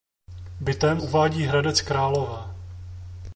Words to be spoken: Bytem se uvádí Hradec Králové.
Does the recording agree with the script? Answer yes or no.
no